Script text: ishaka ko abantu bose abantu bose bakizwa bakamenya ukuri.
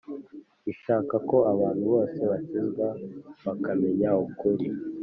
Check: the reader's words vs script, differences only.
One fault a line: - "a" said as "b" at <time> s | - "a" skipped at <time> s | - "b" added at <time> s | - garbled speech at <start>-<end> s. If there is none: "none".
- "abantu bose" skipped at 2.2 s